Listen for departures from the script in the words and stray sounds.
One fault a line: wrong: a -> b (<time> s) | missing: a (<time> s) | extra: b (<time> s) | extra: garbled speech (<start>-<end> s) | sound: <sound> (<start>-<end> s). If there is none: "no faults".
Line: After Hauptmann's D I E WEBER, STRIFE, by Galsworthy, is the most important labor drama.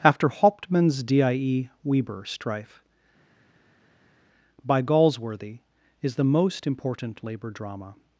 no faults